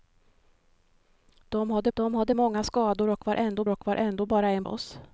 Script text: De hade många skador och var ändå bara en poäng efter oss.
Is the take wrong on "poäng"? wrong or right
wrong